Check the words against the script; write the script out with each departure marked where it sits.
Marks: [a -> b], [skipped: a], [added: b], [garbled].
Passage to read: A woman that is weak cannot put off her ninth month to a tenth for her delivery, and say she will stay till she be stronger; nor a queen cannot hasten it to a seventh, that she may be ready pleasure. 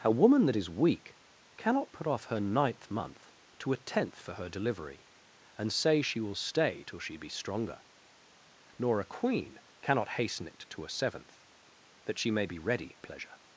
A woman that is weak cannot put off her ninth month to a tenth for her delivery, and say she will stay till she be stronger; nor a queen cannot hasten it to a seventh, that she may be ready pleasure.